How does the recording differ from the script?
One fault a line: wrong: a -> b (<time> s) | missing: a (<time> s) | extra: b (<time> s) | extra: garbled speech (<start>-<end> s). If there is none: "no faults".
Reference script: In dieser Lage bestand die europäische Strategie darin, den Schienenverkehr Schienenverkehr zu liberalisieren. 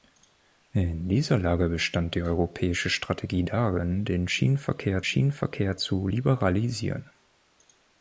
no faults